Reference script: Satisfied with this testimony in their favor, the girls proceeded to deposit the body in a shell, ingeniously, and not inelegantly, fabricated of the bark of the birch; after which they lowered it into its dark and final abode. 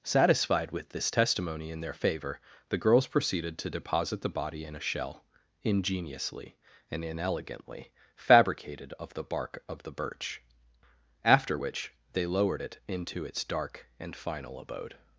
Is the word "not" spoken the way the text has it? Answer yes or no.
no